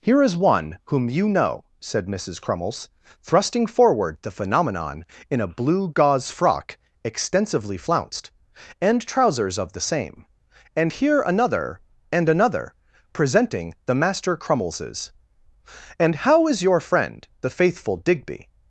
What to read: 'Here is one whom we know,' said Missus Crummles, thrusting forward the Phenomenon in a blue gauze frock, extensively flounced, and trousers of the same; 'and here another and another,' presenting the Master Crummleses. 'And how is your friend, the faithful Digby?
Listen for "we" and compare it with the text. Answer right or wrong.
wrong